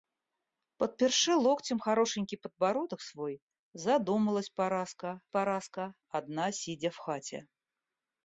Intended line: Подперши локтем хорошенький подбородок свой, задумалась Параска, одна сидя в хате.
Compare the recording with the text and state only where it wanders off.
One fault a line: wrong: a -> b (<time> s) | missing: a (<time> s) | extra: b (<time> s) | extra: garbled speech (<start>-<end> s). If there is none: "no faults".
extra: Параска (5.3 s)